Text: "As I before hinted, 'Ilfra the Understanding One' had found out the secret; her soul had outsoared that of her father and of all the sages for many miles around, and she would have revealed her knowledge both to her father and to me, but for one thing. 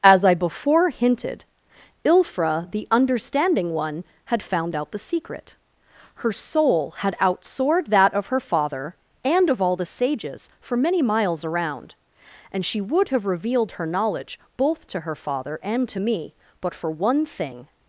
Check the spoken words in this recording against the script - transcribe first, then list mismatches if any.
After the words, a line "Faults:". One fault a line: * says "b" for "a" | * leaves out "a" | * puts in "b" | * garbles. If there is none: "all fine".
"As I before hinted, 'Ilfra the Understanding One' had found out the secret; her soul had outsoared that of her father and of all the sages for many miles around, and she would have revealed her knowledge both to her father and to me, but for one thing.
Faults:
all fine